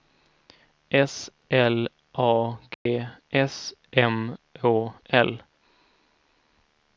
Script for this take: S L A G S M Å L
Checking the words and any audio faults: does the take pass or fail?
fail